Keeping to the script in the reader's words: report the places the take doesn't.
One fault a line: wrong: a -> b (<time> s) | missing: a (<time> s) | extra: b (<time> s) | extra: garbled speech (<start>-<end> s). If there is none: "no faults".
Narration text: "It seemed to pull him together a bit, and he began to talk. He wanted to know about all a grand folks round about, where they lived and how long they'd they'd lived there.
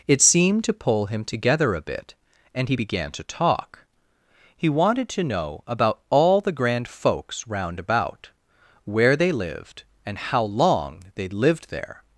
wrong: a -> the (6.4 s)
missing: they'd (11.3 s)